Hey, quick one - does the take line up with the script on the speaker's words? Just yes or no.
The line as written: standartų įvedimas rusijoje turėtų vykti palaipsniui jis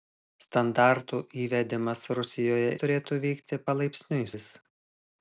yes